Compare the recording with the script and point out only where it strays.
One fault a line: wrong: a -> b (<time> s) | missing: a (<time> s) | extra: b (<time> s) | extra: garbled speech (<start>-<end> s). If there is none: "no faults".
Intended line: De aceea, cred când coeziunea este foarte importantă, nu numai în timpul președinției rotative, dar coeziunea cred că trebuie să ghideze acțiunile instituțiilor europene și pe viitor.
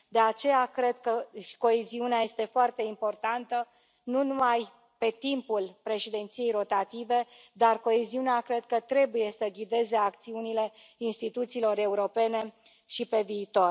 wrong: când -> că (1.0 s)
wrong: în -> pe (5.0 s)